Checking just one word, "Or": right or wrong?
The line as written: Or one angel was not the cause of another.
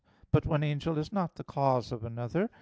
wrong